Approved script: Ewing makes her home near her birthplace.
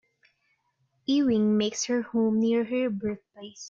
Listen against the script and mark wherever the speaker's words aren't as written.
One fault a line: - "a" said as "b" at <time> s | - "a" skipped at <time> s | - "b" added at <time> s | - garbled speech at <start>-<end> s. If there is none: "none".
none